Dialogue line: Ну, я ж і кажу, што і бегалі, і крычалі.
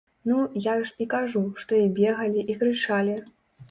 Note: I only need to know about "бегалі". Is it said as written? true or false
true